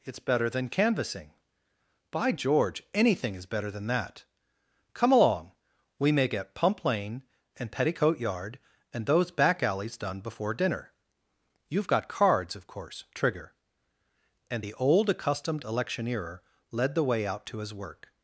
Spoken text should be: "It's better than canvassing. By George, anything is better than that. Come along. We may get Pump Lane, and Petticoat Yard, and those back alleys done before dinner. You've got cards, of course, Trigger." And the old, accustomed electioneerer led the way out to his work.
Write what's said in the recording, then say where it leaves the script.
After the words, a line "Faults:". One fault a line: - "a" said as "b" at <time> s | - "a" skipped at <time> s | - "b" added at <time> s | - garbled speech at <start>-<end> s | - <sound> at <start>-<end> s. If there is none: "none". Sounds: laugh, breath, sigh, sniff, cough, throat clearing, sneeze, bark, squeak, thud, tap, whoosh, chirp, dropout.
"It's better than canvassing. By George, anything is better than that. Come along. We may get Pump Lane, and Petticoat Yard, and those back alleys done before dinner. You've got cards, of course, Trigger." And the old, accustomed electioneerer led the way out to his work.
Faults:
none